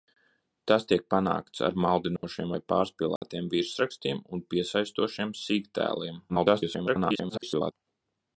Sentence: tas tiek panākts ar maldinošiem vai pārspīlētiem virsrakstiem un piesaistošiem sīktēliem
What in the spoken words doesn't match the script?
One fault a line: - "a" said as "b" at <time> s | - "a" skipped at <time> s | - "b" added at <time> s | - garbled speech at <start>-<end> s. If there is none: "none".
- garbled speech at 6.3-7.7 s